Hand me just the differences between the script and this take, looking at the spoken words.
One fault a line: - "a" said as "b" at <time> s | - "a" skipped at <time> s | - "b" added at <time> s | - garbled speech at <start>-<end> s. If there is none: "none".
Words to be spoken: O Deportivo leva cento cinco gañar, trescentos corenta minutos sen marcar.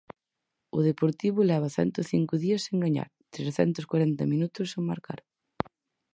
- "días sen" added at 2.4 s